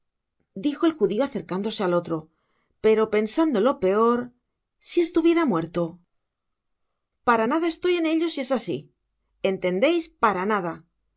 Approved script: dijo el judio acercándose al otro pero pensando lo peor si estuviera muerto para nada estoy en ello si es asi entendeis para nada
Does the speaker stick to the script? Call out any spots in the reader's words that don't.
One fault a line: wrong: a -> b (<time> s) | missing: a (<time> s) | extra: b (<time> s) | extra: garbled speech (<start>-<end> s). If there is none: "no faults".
no faults